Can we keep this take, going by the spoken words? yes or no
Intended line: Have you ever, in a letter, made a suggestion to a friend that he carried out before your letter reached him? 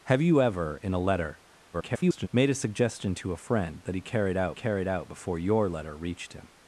no